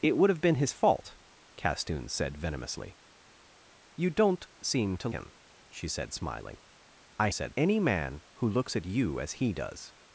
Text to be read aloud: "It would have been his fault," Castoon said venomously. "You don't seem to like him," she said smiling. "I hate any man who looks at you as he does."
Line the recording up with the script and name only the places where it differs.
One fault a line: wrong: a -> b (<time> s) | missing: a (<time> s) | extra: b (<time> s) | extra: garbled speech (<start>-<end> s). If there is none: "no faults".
missing: like (5.1 s)
wrong: hate -> said (7.3 s)